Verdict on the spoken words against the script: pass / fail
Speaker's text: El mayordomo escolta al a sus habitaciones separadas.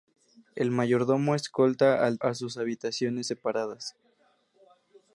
pass